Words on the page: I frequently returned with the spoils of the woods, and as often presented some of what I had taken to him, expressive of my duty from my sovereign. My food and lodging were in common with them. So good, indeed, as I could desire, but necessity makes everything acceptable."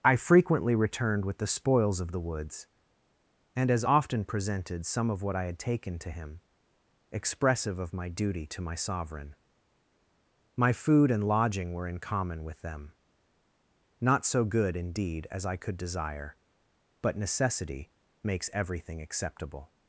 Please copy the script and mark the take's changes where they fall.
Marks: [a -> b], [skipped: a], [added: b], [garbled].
I frequently returned with the spoils of the woods, and as often presented some of what I had taken to him, expressive of my duty [from -> to] my sovereign. My food and lodging were in common with them. [added: Not] So good, indeed, as I could desire, but necessity makes everything acceptable."